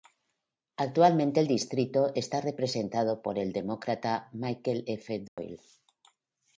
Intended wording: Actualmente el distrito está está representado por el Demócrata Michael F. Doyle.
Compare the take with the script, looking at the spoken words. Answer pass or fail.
fail